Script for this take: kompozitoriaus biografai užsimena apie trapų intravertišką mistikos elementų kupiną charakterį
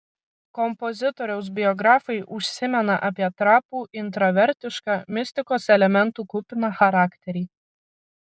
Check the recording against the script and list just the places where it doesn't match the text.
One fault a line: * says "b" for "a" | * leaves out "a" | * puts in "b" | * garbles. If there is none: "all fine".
all fine